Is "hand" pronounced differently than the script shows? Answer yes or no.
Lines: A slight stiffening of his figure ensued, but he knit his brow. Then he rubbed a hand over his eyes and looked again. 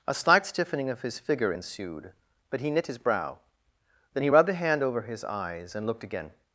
no